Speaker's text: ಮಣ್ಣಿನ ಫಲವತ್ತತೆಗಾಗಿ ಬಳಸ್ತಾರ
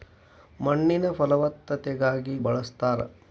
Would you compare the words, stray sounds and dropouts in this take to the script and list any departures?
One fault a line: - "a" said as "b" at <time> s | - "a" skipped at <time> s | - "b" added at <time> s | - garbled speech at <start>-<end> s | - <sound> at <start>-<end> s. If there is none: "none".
none